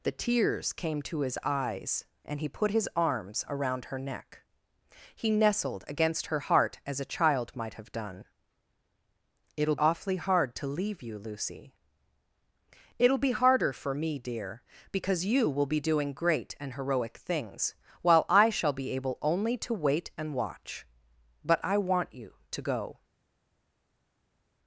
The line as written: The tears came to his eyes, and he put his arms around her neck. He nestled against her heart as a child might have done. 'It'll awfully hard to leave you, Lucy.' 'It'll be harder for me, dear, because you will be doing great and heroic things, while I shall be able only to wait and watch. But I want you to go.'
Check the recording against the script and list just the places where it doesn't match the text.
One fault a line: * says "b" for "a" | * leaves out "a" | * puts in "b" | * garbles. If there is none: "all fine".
all fine